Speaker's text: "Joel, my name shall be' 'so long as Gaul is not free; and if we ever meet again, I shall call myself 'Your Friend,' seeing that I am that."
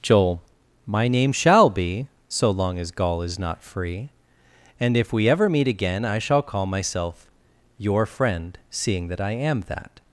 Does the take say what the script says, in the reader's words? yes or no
yes